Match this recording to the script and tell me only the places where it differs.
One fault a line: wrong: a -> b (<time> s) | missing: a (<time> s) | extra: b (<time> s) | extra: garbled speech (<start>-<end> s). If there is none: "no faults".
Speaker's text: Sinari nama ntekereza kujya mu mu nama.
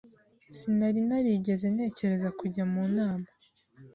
wrong: nama -> narigeze (1.1 s)
missing: mu (2.8 s)